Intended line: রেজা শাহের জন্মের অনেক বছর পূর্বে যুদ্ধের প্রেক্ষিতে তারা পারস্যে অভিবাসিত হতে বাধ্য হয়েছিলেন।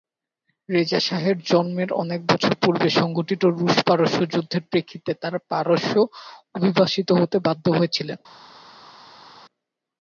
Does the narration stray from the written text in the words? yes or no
yes